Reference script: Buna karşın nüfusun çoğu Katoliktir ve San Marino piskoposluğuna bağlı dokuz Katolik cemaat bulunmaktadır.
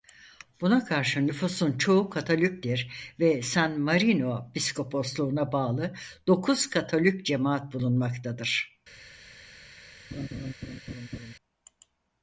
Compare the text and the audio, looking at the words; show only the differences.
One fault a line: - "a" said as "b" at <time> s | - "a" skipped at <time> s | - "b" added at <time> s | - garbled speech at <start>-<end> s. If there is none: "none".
none